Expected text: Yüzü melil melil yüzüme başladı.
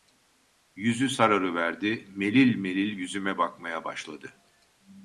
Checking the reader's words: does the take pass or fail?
fail